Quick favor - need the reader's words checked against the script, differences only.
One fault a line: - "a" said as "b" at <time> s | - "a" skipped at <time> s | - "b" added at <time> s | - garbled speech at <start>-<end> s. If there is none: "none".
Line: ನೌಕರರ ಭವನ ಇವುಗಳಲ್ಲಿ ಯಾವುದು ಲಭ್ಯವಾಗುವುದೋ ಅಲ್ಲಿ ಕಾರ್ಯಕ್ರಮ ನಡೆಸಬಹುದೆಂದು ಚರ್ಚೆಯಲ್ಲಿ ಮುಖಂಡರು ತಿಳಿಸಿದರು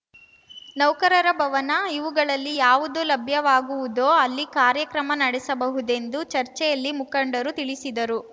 none